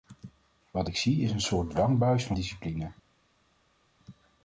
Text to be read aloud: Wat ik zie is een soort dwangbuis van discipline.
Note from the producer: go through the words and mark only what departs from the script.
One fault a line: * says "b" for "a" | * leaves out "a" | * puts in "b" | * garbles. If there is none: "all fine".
all fine